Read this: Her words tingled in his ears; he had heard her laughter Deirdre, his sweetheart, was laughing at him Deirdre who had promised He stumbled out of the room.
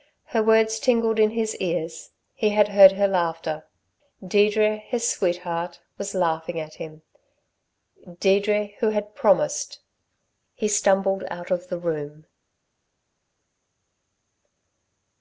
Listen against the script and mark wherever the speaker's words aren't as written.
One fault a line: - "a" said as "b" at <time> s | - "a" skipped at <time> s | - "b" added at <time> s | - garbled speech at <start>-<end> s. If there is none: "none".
none